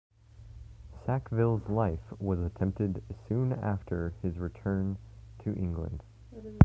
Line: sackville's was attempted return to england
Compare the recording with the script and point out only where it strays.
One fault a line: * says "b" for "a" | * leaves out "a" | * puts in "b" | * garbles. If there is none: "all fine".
* puts in "life"
* puts in "soon after his"